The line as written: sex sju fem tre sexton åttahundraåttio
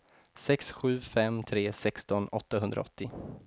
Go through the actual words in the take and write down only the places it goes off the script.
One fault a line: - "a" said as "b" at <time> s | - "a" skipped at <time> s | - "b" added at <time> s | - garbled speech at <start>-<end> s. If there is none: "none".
none